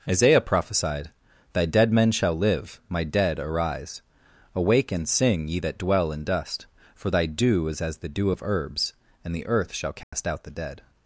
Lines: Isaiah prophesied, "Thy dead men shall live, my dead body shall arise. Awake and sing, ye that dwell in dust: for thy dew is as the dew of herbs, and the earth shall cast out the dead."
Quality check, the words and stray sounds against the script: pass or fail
fail